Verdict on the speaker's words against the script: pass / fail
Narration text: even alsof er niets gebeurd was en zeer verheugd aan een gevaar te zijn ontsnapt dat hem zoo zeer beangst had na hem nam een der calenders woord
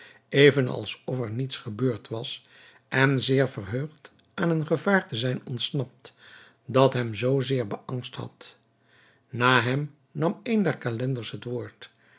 fail